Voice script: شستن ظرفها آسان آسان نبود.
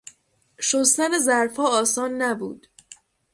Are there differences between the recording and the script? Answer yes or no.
yes